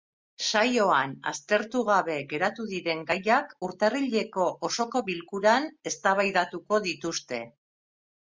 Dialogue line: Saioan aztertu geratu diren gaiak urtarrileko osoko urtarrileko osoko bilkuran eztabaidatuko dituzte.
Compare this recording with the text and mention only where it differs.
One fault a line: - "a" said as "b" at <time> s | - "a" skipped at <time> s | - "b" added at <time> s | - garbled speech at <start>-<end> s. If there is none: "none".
- "gabe" added at 1.9 s
- "urtarrileko osoko" skipped at 5.0 s